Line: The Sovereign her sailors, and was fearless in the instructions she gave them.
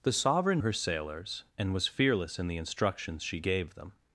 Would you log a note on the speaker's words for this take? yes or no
no